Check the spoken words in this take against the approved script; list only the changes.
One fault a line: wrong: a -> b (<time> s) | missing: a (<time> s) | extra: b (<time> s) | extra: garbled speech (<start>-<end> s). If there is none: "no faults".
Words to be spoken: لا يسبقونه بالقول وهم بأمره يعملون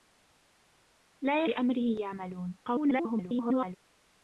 missing: يسبقونه بالقول وهم (1.4 s)
extra: garbled speech (2.6-3.8 s)